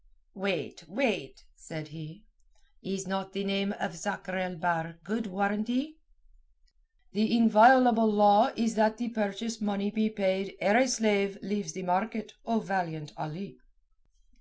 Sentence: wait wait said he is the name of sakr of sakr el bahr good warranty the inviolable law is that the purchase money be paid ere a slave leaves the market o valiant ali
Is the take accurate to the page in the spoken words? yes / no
no